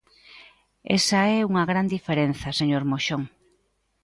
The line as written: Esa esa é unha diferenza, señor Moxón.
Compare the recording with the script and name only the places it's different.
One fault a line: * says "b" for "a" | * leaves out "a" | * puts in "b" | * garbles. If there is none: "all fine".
* leaves out "esa"
* puts in "gran"